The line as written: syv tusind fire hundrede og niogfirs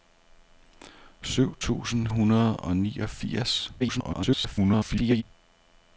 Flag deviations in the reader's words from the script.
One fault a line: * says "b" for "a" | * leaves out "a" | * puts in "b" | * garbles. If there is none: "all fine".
* leaves out "fire"
* garbles